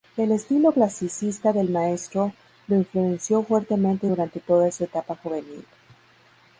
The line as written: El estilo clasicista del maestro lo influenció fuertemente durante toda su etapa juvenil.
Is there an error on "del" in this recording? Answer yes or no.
no